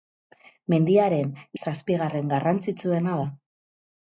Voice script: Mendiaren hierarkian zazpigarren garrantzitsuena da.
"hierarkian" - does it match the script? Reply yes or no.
no